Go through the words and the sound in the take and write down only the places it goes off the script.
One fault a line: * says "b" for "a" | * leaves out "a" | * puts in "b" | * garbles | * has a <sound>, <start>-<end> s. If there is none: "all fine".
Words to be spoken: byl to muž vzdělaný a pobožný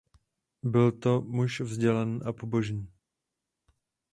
all fine